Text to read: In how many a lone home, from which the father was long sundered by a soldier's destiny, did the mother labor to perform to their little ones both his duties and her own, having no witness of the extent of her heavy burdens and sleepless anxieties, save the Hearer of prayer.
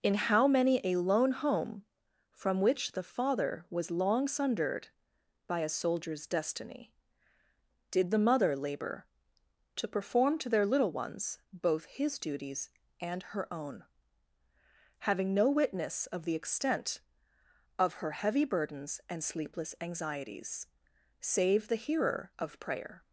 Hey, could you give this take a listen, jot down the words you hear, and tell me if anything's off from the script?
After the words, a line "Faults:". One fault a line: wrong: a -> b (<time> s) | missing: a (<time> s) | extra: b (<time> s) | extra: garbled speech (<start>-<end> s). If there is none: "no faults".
In how many a lone home, from which the father was long sundered by a soldier's destiny, did the mother labor to perform to their little ones both his duties and her own, having no witness of the extent of her heavy burdens and sleepless anxieties, save the Hearer of prayer.
Faults:
no faults